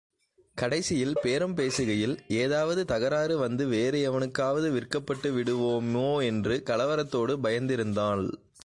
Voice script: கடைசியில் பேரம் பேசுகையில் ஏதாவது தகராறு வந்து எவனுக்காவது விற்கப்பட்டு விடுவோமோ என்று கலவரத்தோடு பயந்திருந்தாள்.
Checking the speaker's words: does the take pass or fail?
fail